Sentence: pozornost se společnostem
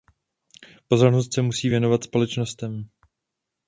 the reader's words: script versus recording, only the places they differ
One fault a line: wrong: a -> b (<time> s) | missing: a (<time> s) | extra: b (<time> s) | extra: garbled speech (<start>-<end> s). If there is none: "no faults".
extra: musí věnovat (1.4 s)